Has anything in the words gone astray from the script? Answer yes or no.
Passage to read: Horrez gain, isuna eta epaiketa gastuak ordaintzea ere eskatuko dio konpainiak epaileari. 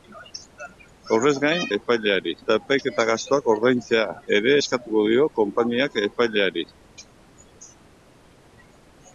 yes